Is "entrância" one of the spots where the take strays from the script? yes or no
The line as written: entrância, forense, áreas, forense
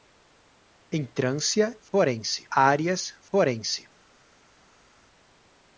no